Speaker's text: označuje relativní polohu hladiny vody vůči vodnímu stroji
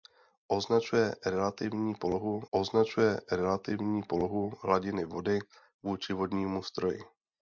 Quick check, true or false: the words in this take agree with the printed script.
false